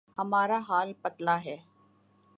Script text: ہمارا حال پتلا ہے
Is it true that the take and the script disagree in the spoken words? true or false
false